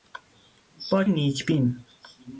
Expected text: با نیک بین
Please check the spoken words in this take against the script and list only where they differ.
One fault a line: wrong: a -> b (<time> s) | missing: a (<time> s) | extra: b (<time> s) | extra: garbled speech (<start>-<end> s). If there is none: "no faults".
no faults